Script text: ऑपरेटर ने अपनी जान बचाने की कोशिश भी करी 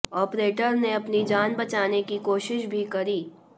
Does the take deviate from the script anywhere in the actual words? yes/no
no